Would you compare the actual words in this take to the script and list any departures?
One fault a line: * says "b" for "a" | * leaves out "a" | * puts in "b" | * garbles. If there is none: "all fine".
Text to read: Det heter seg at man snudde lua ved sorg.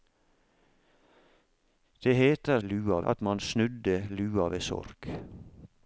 * says "lua" for "seg"